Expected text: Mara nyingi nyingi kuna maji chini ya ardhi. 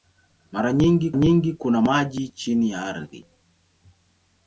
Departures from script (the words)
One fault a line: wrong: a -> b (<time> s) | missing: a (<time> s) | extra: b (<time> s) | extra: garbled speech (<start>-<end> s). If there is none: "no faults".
no faults